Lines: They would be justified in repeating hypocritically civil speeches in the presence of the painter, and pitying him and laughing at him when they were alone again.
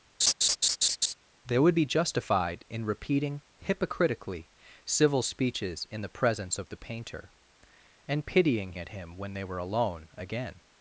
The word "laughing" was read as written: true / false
false